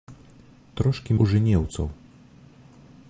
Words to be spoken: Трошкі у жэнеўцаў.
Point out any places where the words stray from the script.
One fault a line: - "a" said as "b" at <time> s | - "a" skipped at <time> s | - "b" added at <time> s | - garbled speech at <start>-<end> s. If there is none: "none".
none